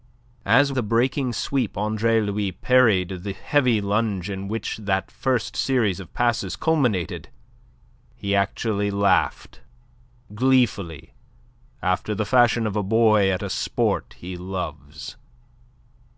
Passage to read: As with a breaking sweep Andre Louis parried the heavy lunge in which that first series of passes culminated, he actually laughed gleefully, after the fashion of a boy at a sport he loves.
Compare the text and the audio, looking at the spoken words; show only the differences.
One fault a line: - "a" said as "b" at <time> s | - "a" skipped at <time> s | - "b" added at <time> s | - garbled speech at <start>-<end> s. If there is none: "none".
- "with" skipped at 0.7 s